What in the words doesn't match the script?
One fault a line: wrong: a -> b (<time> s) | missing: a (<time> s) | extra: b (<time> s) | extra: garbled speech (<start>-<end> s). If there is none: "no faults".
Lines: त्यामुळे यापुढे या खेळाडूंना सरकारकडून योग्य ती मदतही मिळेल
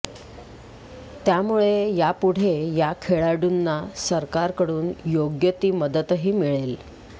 no faults